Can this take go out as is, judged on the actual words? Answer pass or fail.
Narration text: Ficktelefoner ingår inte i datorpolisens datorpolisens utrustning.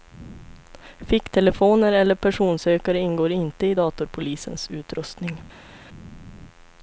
fail